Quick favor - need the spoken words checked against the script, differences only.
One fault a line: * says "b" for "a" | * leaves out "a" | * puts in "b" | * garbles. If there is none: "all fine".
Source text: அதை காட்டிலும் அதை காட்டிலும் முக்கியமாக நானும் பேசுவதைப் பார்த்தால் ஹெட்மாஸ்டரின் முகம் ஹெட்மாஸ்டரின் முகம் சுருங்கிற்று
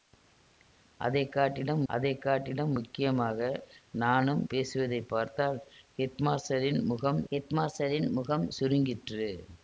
all fine